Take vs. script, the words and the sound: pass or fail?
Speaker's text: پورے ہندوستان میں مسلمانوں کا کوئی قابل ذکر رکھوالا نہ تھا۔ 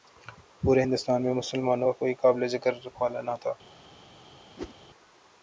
fail